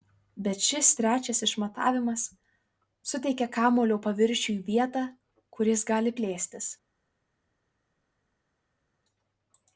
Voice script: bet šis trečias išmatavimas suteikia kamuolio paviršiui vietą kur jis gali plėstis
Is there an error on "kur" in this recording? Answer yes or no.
no